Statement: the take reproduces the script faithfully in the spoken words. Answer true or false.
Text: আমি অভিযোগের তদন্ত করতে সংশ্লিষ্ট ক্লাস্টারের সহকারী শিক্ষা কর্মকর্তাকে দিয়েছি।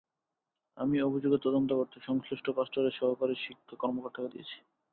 true